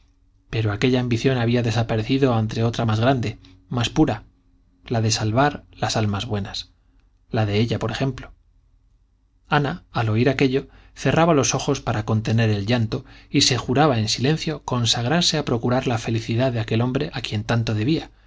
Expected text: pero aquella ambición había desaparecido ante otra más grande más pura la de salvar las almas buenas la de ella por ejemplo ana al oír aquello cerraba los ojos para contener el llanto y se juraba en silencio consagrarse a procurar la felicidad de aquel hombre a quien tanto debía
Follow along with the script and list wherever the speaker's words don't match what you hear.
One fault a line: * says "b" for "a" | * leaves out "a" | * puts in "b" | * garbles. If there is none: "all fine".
all fine